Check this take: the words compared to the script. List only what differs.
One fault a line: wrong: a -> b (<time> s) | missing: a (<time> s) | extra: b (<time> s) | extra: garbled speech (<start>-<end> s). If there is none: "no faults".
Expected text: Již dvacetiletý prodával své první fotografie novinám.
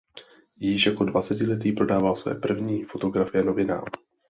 extra: jako (0.8 s)